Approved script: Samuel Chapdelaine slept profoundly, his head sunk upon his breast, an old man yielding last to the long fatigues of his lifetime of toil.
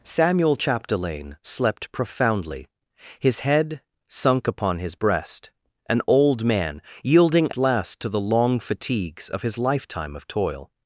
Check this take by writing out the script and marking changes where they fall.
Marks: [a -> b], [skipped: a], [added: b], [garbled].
Samuel Chapdelaine slept profoundly, his head sunk upon his breast, an old man yielding last to the long fatigues of his lifetime of toil.